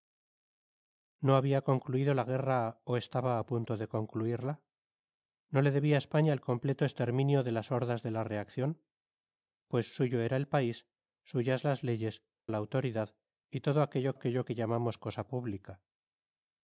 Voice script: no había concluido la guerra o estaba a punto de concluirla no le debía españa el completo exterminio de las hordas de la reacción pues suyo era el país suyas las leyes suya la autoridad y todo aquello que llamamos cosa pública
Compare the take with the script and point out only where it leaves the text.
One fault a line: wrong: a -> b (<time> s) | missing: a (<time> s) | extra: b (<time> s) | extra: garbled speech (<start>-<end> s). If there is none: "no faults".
missing: suya (12.2 s)
extra: aquello (14.1 s)